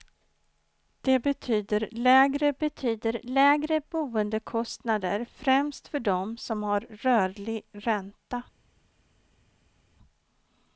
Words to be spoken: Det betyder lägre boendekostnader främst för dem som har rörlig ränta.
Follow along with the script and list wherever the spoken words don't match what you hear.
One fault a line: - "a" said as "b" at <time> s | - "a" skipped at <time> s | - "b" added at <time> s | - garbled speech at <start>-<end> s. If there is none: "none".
- "betyder lägre" added at 2.6 s